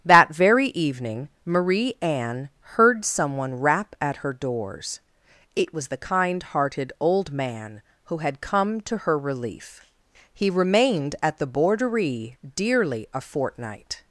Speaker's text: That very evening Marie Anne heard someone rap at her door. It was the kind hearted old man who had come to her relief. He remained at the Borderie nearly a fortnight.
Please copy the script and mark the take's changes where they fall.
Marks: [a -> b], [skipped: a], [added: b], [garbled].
That very evening Marie Anne heard someone rap at her [door. -> doors] It was the kind hearted old man who had come to her relief. He remained at the Borderie [nearly -> dearly] a fortnight.